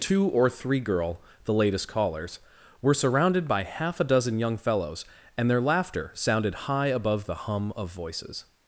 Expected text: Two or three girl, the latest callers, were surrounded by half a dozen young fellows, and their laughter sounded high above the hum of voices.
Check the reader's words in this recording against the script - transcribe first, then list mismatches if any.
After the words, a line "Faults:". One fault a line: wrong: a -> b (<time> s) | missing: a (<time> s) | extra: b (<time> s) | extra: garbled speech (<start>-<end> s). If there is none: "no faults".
Two or three girl, the latest callers, were surrounded by half a dozen young fellows, and their laughter sounded high above the hum of voices.
Faults:
no faults